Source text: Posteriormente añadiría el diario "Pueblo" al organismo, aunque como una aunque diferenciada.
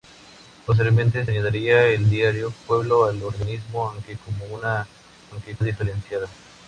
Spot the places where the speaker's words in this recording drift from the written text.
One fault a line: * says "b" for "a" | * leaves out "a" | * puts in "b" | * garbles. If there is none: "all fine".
all fine